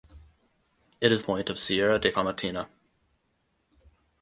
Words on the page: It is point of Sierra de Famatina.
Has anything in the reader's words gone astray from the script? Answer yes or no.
no